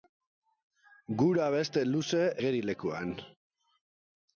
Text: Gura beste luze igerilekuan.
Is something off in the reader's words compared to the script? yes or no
no